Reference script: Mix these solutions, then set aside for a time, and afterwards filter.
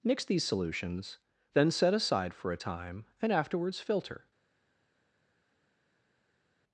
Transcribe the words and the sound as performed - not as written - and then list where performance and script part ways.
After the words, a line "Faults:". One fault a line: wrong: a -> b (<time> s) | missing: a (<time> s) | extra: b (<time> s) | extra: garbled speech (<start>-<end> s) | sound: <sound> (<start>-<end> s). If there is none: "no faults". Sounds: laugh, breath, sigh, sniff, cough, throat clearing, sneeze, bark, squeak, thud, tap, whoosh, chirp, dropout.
Mix these solutions, then set aside for a time, and afterwards filter.
Faults:
no faults